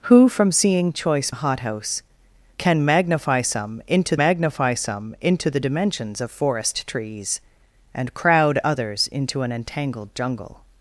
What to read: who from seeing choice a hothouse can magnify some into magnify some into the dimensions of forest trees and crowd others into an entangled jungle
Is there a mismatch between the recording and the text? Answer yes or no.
no